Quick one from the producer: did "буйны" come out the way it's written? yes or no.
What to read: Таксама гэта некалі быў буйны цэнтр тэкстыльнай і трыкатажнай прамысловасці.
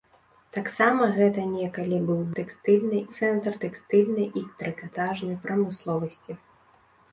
no